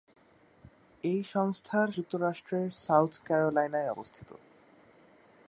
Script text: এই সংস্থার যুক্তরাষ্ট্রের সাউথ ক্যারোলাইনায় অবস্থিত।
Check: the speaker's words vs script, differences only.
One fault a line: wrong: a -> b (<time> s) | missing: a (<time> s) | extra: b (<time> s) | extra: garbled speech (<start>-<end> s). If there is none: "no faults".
no faults